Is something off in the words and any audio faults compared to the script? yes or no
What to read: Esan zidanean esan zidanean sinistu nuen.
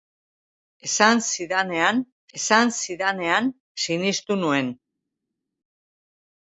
no